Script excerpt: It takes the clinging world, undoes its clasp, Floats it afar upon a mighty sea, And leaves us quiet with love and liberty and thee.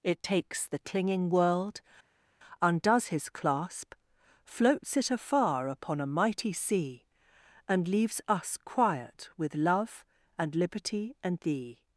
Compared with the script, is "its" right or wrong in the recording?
wrong